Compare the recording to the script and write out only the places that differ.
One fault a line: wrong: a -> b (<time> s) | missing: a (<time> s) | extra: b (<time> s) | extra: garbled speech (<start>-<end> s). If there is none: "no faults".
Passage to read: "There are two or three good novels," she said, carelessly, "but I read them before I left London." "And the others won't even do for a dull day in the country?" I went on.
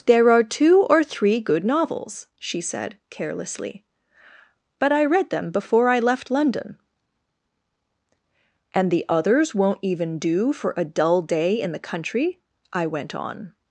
no faults